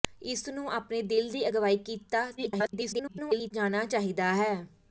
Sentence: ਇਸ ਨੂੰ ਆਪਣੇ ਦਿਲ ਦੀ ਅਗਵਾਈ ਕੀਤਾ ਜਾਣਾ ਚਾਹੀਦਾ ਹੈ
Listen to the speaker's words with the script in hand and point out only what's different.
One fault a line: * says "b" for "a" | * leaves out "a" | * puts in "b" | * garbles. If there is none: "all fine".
* garbles